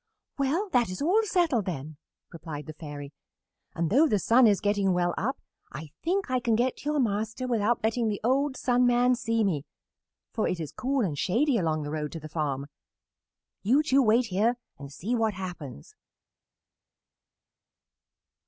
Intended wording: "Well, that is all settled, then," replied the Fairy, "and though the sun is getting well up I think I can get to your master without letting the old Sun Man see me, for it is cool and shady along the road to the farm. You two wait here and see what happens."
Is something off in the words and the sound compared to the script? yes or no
no